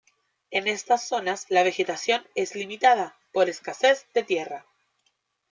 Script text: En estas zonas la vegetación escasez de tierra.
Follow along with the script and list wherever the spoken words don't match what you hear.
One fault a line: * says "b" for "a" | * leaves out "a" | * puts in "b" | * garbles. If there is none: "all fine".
* puts in "es limitada por"